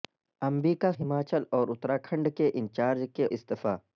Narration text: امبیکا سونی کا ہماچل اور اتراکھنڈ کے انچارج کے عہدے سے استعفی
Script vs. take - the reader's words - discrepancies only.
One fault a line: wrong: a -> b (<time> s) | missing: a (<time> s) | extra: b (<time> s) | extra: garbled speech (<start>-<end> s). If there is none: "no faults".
missing: سونی کا (0.9 s)
missing: عہدے سے (3.3 s)